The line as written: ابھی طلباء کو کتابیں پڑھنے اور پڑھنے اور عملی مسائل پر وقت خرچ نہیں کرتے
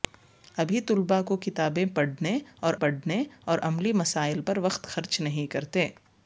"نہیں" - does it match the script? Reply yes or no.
yes